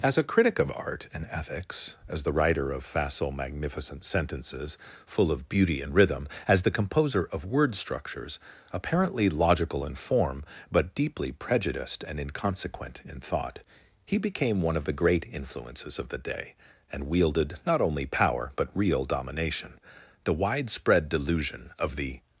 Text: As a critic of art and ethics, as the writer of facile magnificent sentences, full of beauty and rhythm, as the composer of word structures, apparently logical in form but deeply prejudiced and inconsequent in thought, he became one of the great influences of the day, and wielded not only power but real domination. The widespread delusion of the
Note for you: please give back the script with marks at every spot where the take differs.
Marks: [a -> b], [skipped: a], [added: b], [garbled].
As a critic of art and ethics, as the writer of facile magnificent sentences, full of beauty and rhythm, as the composer of word structures, apparently logical in form but deeply prejudiced and inconsequent in thought, he became one of the great influences of the day, and wielded not only power but real domination. The widespread delusion of the